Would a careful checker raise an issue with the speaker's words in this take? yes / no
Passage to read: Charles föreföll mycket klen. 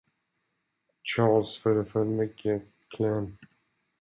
no